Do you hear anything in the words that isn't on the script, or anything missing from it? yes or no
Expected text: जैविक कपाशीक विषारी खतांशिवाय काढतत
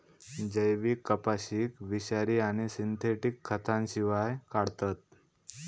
yes